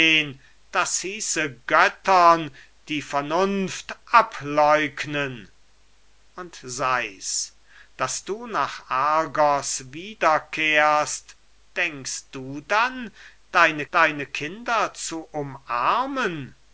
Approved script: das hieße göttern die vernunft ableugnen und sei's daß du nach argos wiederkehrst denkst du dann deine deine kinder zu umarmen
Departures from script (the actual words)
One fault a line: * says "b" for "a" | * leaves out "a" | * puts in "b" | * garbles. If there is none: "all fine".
all fine